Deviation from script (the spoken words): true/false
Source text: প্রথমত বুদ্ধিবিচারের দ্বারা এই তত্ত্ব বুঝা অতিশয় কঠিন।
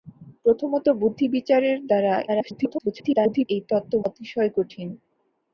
true